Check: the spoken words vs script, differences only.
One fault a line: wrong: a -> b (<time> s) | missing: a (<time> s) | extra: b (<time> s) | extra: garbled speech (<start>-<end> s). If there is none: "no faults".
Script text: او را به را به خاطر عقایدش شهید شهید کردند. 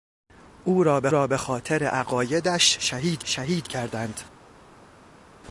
no faults